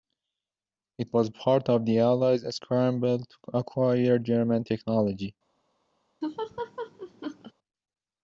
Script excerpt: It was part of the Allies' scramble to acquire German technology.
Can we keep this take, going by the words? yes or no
yes